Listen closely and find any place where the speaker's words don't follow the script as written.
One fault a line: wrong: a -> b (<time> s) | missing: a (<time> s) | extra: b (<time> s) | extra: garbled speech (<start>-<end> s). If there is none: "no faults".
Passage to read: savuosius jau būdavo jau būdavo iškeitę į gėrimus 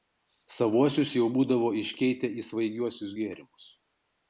missing: jau būdavo (1.7 s)
extra: svaigiuosius (2.5 s)